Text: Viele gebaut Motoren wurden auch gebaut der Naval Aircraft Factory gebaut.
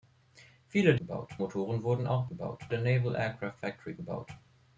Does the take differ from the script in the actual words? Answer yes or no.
no